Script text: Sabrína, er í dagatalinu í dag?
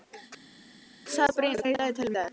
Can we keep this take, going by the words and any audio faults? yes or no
yes